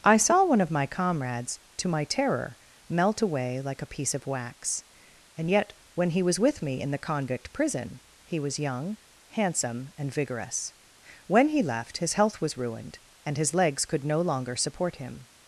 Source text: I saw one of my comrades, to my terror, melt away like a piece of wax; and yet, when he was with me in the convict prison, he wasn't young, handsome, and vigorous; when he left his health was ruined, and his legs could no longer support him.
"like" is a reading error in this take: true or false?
false